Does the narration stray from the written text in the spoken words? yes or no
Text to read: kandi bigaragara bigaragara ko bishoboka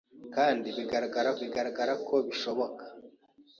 no